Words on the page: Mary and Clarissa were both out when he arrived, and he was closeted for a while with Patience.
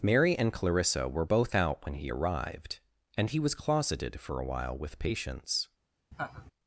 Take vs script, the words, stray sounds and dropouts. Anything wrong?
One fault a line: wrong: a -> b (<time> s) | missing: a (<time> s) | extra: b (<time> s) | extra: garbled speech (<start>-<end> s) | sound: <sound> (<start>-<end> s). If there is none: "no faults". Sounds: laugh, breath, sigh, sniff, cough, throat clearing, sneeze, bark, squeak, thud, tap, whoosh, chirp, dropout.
sound: laugh (6.1-6.5 s)